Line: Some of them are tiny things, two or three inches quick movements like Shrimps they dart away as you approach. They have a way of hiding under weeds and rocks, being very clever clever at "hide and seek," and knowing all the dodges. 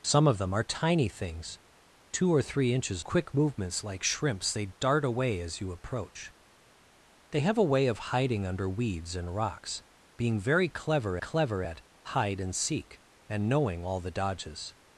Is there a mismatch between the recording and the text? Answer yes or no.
no